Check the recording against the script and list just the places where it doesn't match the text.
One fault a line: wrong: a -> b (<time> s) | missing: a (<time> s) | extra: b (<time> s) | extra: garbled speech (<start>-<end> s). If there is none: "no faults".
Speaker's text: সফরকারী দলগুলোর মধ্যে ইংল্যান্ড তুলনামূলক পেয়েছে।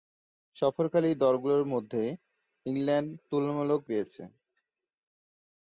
no faults